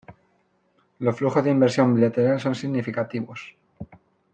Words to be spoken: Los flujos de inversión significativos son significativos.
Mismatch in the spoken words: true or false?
true